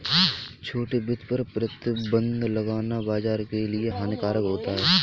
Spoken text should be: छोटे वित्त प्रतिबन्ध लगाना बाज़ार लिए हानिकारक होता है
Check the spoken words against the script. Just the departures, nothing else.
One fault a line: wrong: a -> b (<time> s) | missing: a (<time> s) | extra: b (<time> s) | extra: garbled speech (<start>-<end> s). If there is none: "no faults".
extra: पर (1.3 s)
extra: के (3.5 s)